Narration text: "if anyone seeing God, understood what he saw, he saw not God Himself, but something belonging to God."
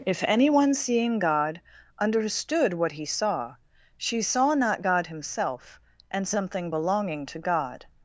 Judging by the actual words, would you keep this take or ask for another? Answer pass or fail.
fail